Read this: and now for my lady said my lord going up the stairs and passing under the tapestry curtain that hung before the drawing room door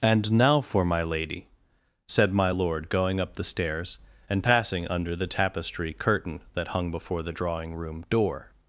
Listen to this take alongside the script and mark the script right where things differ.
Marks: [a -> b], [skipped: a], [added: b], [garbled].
and now for my lady said my lord going up the stairs and passing under the tapestry curtain that hung before the drawing room door